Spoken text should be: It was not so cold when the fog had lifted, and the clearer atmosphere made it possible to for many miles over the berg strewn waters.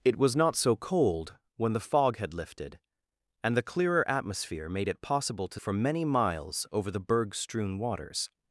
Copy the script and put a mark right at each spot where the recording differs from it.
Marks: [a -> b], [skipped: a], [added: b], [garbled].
It was not so cold when the fog had lifted, and the clearer atmosphere made it possible to for many miles over the berg strewn waters.